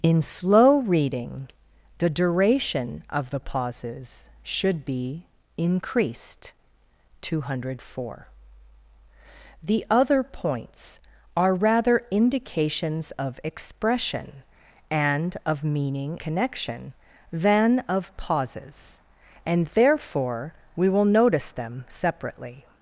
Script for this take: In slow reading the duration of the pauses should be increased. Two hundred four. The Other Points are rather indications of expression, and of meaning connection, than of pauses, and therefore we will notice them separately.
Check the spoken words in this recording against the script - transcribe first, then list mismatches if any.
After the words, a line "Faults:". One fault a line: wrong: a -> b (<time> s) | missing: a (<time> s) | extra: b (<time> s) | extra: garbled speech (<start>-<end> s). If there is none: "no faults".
In slow reading the duration of the pauses should be increased. Two hundred four. The Other Points are rather indications of expression, and of meaning connection, than of pauses, and therefore we will notice them separately.
Faults:
no faults